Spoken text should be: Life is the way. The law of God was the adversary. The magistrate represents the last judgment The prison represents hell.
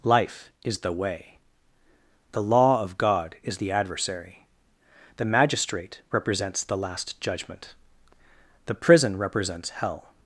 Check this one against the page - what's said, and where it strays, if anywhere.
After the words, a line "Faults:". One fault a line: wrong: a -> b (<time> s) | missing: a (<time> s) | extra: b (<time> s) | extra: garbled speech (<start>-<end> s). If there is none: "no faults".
Life is the way. The law of God is the adversary. The magistrate represents the last judgment The prison represents hell.
Faults:
wrong: was -> is (3.4 s)